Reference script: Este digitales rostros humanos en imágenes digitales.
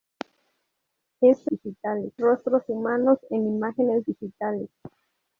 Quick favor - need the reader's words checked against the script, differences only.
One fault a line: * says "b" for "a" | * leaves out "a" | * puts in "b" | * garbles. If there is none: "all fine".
all fine